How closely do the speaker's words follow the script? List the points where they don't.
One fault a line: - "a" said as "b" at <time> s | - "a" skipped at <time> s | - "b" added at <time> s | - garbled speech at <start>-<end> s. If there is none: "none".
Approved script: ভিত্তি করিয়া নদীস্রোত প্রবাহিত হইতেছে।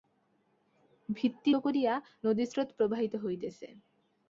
none